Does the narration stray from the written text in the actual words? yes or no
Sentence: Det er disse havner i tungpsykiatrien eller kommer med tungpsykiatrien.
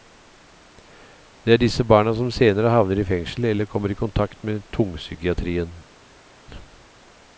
yes